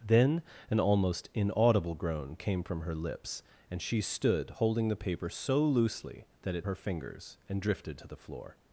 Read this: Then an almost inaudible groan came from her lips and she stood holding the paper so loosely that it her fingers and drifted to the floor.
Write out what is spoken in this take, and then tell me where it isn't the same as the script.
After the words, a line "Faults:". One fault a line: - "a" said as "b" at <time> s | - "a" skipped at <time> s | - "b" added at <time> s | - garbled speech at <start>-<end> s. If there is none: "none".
Then an almost inaudible groan came from her lips and she stood holding the paper so loosely that it her fingers and drifted to the floor.
Faults:
none